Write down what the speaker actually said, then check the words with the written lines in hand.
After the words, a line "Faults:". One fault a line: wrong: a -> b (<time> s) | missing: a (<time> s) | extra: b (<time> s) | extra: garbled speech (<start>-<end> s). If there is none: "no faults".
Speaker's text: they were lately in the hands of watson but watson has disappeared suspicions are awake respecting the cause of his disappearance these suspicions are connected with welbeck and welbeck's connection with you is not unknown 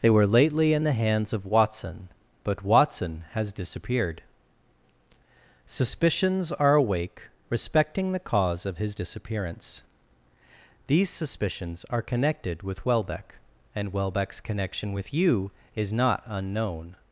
they were lately in the hands of watson but watson has disappeared suspicions are awake respecting the cause of his disappearance these suspicions are connected with welbeck and welbeck's connection with you is not unknown
Faults:
no faults